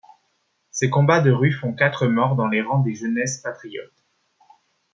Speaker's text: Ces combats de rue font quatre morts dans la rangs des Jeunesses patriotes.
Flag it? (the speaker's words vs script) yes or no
yes